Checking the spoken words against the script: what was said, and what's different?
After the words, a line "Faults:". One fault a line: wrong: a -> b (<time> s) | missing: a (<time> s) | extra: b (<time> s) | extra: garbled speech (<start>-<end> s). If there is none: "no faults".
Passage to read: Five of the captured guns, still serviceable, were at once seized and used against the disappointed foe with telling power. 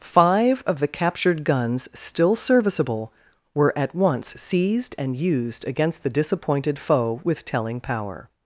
Five of the captured guns, still serviceable, were at once seized and used against the disappointed foe with telling power.
Faults:
no faults